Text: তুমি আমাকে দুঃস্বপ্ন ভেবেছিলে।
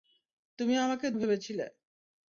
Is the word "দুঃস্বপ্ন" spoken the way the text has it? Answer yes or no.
no